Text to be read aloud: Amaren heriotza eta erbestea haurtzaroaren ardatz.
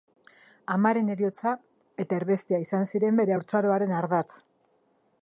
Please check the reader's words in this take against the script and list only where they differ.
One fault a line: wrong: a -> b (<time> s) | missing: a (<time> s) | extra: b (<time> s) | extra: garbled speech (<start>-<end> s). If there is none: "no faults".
extra: izan ziren bere (2.6 s)